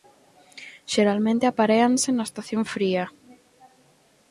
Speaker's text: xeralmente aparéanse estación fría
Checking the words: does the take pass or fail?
fail